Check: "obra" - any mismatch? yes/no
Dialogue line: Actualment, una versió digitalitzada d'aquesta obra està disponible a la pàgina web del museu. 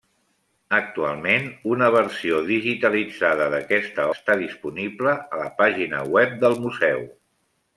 yes